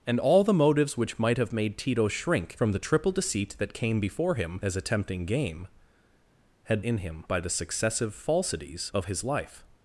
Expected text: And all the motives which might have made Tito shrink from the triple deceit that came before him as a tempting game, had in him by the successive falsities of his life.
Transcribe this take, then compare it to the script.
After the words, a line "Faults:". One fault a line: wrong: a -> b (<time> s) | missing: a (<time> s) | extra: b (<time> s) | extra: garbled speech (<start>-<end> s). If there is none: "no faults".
And all the motives which might have made Tito shrink from the triple deceit that came before him as a tempting game, had in him by the successive falsities of his life.
Faults:
no faults